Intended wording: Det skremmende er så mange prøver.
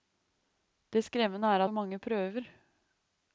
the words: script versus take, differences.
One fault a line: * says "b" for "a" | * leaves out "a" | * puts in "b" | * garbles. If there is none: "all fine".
all fine